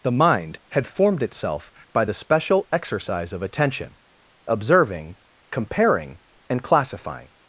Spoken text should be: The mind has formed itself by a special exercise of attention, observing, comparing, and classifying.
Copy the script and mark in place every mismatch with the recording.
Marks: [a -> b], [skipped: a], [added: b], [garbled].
The mind [has -> had] formed itself by [a -> the] special exercise of attention, observing, comparing, and classifying.